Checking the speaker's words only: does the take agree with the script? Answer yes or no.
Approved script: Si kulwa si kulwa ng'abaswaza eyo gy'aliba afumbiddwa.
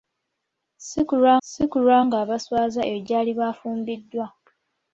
yes